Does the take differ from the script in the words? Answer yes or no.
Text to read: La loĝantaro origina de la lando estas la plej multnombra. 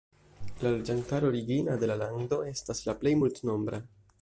no